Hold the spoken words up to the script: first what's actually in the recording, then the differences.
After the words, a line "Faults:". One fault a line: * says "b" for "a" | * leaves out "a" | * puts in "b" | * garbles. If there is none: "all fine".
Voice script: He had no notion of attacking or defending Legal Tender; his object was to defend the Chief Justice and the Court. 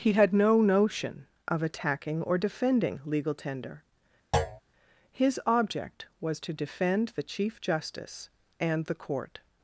He had no notion of attacking or defending Legal Tender; his object was to defend the Chief Justice and the Court.
Faults:
all fine